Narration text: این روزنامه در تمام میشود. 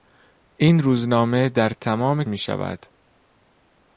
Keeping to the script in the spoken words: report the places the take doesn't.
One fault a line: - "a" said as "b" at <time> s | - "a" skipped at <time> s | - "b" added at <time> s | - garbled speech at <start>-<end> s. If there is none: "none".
none